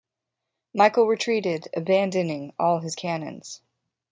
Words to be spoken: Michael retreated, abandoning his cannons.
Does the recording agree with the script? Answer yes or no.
no